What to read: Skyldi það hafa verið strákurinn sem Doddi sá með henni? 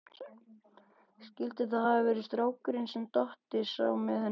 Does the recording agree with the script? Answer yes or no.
yes